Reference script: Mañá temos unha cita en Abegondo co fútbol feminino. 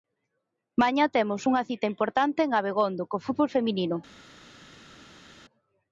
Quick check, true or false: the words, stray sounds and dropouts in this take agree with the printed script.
false